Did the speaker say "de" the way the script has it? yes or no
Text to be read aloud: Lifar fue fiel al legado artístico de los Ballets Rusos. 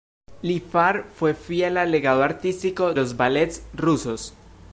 no